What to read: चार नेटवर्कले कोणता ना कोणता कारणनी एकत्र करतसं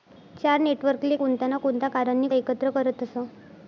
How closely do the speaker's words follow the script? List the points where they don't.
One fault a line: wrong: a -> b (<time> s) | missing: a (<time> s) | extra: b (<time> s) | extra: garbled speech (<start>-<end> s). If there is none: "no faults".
no faults